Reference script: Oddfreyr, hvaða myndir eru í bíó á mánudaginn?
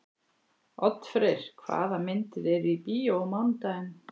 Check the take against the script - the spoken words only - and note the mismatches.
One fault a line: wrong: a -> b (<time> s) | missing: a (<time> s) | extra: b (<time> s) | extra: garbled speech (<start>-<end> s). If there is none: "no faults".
no faults